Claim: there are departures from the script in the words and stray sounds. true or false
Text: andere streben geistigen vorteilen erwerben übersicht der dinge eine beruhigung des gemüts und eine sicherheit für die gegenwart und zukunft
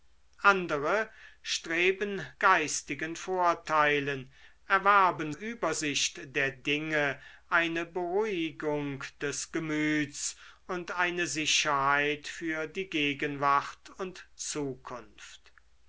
false